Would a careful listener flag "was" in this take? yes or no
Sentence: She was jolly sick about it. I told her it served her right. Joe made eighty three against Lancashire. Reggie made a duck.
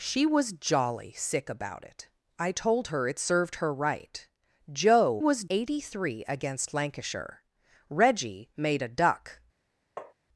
no